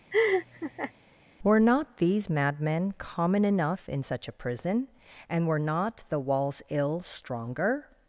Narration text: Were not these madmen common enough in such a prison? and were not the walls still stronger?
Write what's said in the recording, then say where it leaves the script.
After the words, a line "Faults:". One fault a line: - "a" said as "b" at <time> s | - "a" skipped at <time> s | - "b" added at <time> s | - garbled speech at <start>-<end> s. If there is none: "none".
Were not these madmen common enough in such a prison? and were not the walls ill stronger?
Faults:
- "still" said as "ill" at 6.7 s